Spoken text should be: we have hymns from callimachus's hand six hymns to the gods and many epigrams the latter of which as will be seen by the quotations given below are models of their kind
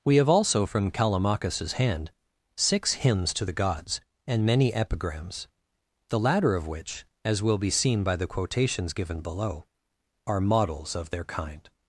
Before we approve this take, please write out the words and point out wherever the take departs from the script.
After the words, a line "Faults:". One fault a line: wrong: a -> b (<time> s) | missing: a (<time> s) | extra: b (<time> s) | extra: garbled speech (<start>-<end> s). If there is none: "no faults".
we have also from callimachus's hand six hymns to the gods and many epigrams the latter of which as will be seen by the quotations given below are models of their kind
Faults:
wrong: hymns -> also (0.3 s)